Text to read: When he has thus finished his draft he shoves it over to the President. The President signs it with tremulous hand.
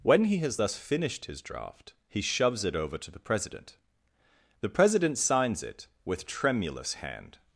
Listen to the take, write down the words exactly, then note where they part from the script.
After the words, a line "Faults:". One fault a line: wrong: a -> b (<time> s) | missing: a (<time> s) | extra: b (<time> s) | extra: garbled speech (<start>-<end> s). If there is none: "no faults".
When he has thus finished his draft he shoves it over to the President. The President signs it with tremulous hand.
Faults:
no faults